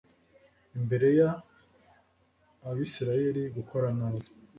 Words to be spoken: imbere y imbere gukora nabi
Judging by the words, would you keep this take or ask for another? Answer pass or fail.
fail